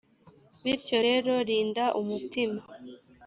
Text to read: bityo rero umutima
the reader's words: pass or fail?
fail